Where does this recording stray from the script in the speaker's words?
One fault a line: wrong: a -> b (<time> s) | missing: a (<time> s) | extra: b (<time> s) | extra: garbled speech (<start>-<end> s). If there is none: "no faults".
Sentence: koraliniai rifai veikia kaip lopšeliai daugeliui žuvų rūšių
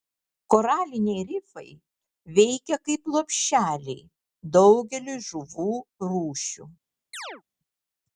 no faults